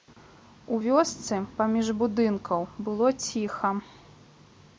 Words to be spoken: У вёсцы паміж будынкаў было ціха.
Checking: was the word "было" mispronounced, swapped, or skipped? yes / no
no